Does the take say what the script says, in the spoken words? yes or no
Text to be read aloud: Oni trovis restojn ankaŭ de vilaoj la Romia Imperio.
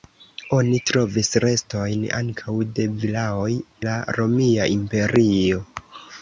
yes